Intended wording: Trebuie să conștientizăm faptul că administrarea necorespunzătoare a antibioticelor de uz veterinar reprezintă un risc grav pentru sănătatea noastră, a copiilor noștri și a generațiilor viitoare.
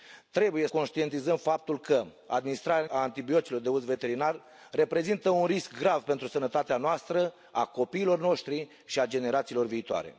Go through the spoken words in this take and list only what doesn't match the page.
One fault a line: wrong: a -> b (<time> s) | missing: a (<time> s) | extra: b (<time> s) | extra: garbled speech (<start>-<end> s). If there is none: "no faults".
missing: să (0.7 s)
missing: necorespunzătoare (2.9 s)